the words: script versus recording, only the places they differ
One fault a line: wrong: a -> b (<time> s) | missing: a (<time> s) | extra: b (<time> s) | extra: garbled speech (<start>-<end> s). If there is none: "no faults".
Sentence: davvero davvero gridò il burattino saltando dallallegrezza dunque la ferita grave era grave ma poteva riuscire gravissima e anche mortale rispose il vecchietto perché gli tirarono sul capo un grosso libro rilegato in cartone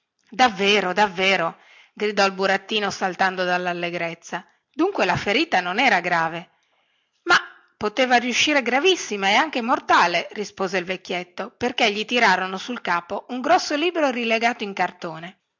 wrong: grave -> non (5.6 s)